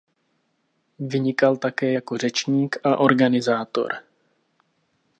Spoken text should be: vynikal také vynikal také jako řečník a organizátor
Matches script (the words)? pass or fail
fail